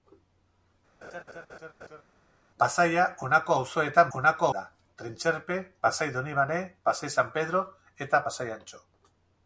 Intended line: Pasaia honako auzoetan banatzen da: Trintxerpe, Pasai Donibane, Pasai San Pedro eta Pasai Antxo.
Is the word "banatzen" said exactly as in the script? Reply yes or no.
no